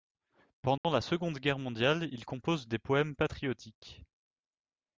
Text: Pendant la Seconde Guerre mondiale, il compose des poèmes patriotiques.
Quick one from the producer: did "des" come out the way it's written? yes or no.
yes